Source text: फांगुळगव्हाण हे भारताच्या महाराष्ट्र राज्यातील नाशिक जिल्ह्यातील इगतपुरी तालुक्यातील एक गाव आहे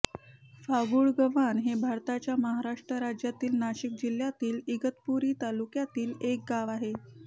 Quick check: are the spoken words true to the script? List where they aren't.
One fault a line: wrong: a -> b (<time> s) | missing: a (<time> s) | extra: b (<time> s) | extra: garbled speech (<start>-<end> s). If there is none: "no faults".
no faults